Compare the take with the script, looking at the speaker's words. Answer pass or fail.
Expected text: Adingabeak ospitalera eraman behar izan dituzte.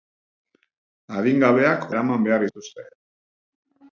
fail